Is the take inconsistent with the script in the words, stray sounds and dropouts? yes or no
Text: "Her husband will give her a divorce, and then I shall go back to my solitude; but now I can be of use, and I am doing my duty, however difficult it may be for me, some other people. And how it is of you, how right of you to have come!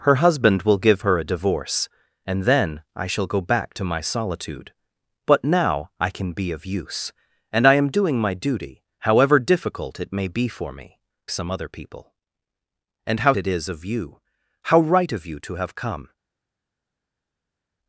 no